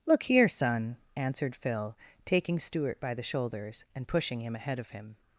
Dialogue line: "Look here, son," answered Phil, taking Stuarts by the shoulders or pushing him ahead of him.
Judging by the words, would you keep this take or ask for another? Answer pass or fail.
fail